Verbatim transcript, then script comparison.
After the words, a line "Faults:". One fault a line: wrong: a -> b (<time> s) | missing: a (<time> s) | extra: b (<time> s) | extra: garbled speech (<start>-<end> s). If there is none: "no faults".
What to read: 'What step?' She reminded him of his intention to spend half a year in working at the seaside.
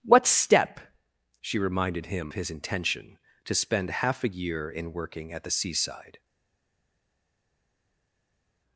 'What step?' She reminded him his intention to spend half a year in working at the seaside.
Faults:
missing: of (2.3 s)